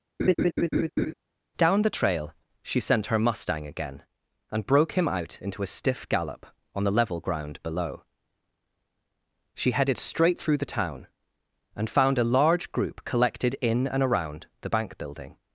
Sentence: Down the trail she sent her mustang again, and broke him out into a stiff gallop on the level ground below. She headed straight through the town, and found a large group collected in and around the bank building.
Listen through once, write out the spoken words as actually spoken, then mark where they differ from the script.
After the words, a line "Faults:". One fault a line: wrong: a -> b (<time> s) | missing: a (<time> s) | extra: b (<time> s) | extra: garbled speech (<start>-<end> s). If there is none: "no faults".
Down the trail she sent her mustang again, and broke him out into a stiff gallop on the level ground below. She headed straight through the town, and found a large group collected in and around the bank building.
Faults:
no faults